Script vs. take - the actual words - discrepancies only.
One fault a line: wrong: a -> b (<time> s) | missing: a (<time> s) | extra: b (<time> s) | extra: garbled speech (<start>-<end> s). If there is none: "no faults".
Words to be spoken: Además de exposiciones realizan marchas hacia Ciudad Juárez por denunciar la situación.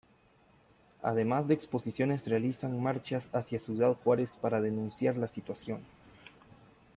wrong: por -> para (4.4 s)